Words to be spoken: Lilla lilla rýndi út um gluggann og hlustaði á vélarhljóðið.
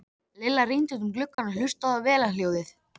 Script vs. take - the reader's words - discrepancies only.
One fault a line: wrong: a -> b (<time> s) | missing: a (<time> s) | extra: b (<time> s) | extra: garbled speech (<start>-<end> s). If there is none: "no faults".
missing: lilla (0.6 s)